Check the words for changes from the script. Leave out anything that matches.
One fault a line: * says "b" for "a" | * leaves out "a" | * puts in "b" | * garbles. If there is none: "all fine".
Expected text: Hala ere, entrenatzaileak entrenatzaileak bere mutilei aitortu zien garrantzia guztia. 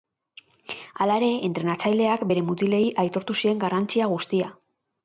* leaves out "entrenatzaileak"